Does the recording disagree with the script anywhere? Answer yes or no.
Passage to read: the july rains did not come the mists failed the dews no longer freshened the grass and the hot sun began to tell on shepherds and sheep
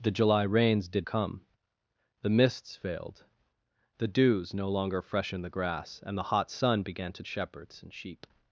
yes